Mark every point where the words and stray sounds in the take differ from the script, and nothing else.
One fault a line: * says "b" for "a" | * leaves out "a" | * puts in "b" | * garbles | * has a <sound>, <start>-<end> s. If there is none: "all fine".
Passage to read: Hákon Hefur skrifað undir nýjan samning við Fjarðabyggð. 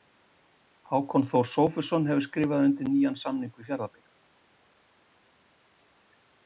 * puts in "Þór Sófusson"